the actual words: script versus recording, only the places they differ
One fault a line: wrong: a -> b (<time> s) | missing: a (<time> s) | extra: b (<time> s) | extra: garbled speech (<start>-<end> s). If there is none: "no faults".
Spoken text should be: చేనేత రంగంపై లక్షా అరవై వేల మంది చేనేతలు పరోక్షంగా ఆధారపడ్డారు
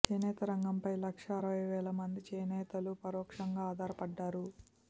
no faults